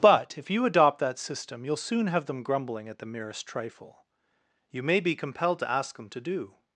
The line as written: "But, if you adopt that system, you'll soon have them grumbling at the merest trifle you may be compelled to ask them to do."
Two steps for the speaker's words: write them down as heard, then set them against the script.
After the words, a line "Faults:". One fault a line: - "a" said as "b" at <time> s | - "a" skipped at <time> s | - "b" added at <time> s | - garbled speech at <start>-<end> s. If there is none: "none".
"But, if you adopt that system, you'll soon have them grumbling at the merest trifle you may be compelled to ask them to do."
Faults:
none